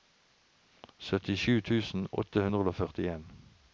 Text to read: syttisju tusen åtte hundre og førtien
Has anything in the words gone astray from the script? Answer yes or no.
no